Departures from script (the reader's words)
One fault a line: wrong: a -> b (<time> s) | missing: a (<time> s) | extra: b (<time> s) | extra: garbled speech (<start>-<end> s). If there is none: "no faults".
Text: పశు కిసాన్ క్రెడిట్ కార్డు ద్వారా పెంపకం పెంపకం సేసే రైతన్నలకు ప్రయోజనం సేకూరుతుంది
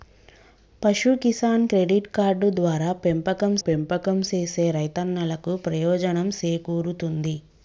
no faults